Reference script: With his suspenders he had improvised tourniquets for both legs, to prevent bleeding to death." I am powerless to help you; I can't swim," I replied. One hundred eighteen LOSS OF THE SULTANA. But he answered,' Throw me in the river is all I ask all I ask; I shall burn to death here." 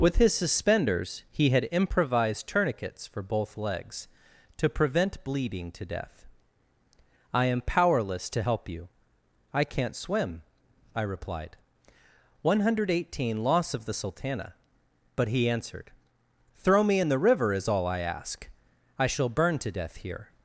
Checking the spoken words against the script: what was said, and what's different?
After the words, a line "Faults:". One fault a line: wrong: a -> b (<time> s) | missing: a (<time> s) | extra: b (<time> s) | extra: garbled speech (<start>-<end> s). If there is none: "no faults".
With his suspenders he had improvised tourniquets for both legs, to prevent bleeding to death." I am powerless to help you; I can't swim," I replied. One hundred eighteen LOSS OF THE SULTANA. But he answered,' Throw me in the river is all I ask; I shall burn to death here."
Faults:
missing: all I ask (18.5 s)